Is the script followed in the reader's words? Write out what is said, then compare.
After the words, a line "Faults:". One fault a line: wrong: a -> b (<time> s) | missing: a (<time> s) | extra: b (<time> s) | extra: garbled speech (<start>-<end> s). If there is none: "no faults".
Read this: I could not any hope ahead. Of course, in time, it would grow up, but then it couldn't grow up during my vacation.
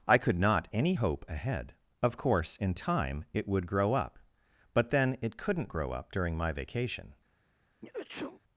I could not any hope ahead. Of course, in time, it would grow up, but then it couldn't grow up during my vacation.
Faults:
no faults